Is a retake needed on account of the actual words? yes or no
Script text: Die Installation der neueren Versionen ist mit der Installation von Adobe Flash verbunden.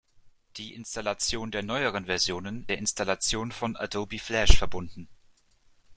yes